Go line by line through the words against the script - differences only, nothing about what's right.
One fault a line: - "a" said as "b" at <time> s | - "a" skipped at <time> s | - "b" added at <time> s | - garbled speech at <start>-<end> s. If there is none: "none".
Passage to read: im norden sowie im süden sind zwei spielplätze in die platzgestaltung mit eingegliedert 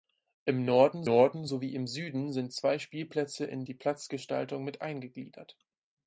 - "norden" added at 1.0 s